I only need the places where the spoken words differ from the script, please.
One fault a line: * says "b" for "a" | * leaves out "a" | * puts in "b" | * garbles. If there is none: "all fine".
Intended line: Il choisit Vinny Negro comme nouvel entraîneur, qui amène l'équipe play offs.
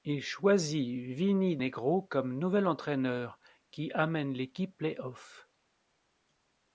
all fine